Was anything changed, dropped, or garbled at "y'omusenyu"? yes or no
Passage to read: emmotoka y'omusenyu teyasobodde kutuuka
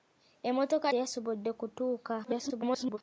yes